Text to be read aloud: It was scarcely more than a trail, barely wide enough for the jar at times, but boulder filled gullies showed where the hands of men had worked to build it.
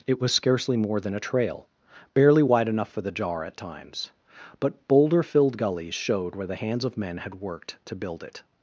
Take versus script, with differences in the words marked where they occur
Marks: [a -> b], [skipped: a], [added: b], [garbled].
It was scarcely more than a trail, barely wide enough for the jar at times, but boulder filled gullies showed where the hands of men had worked to build it.